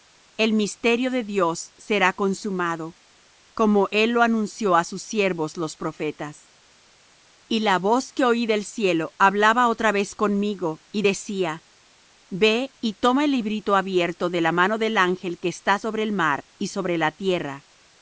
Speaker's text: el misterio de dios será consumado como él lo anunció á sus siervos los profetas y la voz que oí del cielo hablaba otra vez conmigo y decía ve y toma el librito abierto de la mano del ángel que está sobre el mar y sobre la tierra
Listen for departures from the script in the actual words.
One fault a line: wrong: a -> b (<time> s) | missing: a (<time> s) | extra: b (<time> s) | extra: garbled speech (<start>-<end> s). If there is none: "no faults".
no faults